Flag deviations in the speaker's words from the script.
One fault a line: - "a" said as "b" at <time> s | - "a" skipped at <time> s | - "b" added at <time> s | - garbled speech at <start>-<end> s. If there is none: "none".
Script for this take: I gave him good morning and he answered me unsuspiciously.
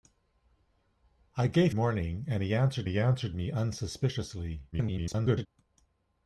- "him good morning and" said as "morning and he answered" at 1.7 s
- garbled speech at 4.7-5.5 s